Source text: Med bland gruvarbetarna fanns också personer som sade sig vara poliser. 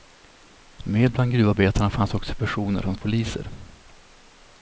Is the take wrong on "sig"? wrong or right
wrong